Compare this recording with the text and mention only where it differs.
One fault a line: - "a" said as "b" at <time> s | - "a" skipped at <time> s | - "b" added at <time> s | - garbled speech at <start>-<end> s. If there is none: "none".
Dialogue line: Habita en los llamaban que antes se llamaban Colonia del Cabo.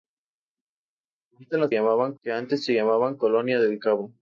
none